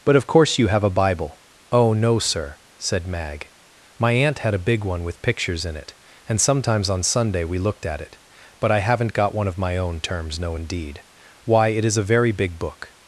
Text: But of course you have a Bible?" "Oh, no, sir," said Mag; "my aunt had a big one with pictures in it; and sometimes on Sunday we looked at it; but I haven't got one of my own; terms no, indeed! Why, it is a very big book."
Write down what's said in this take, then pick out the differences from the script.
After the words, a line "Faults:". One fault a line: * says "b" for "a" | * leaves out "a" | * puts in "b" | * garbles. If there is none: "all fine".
But of course you have a Bible?" "Oh, no, sir," said Mag; "my aunt had a big one with pictures in it; and sometimes on Sunday we looked at it; but I haven't got one of my own; terms no, indeed! Why, it is a very big book."
Faults:
all fine